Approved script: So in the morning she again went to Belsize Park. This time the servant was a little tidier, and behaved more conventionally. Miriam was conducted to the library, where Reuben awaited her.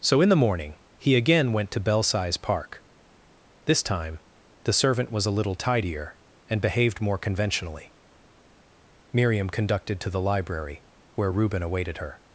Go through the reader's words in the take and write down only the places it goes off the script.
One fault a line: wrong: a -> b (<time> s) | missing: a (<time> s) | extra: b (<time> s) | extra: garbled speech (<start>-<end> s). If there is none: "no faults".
wrong: she -> he (1.0 s)
missing: was (9.5 s)